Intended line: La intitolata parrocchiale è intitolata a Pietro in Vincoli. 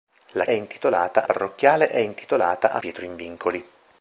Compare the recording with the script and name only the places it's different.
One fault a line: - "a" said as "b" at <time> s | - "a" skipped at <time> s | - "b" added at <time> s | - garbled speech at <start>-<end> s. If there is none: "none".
none